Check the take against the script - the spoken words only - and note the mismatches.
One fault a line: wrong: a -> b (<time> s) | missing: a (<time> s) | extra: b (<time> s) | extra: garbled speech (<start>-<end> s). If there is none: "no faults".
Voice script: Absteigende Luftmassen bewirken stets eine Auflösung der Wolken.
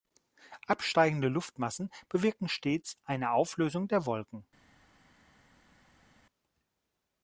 no faults